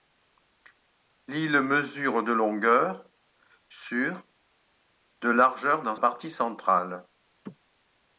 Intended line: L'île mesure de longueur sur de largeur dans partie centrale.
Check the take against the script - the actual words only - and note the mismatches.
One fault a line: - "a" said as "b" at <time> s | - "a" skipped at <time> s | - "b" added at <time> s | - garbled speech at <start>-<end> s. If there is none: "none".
none